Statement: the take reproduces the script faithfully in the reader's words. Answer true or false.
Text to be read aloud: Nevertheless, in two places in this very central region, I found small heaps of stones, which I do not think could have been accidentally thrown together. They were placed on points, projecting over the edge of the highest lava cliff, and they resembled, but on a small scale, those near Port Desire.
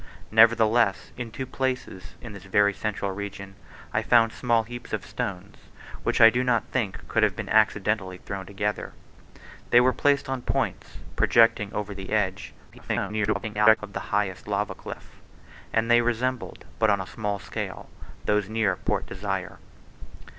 false